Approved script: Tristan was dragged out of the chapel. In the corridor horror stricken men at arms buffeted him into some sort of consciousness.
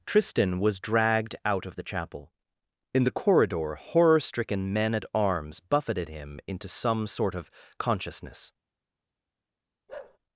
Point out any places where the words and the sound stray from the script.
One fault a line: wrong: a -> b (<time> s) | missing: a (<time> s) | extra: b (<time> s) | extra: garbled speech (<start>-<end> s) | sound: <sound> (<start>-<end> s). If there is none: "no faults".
sound: bark (9.9-10.2 s)